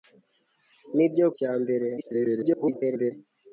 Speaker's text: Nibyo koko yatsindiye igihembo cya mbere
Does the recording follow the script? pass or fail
fail